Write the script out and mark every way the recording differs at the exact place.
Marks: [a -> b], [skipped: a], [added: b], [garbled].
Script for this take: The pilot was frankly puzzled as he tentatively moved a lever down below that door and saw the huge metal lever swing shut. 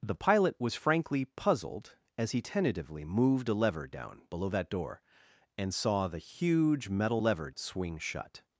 The pilot was frankly puzzled as he tentatively moved a lever down below that door and saw the huge metal lever swing shut.